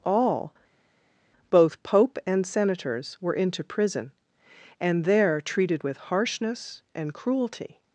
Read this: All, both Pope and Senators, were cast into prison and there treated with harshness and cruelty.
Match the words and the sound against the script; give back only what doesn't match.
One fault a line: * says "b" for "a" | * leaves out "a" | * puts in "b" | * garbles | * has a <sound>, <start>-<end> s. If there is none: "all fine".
* leaves out "cast"